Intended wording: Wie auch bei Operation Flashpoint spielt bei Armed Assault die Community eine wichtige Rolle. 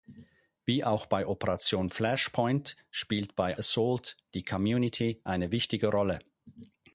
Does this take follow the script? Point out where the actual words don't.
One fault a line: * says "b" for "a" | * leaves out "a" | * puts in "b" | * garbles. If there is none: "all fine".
* leaves out "Armed"